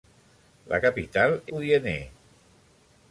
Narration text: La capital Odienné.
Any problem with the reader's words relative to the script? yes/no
no